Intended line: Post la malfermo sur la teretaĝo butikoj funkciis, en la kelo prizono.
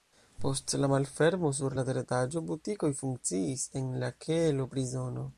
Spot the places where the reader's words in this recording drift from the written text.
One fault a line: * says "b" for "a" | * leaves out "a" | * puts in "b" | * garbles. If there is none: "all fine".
all fine